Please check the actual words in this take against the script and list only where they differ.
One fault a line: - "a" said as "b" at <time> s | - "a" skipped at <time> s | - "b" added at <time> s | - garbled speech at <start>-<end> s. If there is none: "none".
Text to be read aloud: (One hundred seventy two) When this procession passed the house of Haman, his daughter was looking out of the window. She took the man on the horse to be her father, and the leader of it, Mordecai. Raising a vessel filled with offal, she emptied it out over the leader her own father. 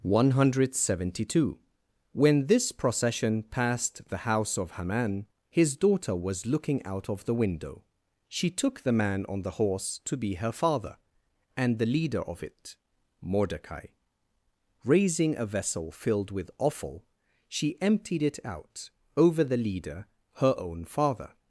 none